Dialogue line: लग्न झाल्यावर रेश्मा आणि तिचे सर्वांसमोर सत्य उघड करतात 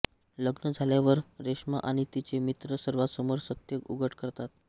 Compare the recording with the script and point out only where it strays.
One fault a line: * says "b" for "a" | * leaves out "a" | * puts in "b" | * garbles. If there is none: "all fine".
* puts in "मित्र"